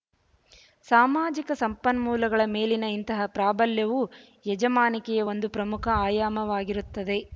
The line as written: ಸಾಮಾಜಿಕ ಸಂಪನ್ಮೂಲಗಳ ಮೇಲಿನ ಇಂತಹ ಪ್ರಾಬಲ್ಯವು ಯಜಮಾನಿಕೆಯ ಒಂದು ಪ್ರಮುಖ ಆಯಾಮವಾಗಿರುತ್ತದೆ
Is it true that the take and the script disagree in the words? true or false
false